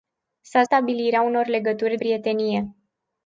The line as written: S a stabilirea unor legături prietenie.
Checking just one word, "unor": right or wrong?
right